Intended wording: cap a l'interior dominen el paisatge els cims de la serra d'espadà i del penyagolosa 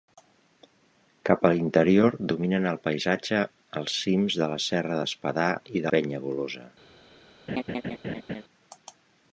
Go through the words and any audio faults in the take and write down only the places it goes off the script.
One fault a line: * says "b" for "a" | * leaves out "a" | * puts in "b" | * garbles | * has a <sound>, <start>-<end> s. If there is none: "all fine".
* leaves out "del"
* has a laugh, 7.5-8.4 s